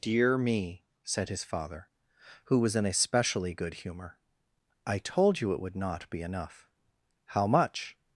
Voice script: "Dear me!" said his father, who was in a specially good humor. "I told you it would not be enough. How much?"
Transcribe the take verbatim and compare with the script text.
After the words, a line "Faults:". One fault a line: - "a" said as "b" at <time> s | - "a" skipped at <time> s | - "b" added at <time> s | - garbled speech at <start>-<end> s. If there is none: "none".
"Dear me!" said his father, who was in a specially good humor. "I told you it would not be enough. How much?"
Faults:
none